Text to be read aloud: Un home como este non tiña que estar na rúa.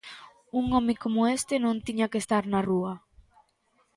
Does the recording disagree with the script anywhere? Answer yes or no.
no